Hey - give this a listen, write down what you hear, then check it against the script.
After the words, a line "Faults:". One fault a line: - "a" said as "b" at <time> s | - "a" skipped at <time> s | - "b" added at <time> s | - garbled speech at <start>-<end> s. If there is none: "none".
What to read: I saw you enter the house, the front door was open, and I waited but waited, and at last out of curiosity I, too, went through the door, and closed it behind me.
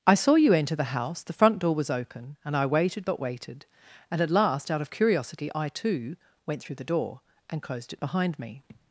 I saw you enter the house, the front door was open, and I waited but waited, and at last out of curiosity I, too, went through the door, and closed it behind me.
Faults:
none